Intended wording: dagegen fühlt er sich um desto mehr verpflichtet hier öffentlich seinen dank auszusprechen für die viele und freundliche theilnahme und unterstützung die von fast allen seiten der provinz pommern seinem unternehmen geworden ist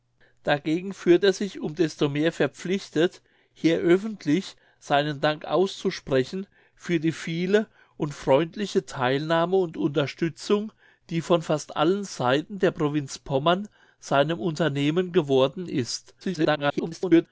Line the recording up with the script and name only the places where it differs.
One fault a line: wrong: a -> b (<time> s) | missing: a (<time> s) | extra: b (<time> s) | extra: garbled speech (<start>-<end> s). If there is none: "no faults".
extra: garbled speech (16.2-17.3 s)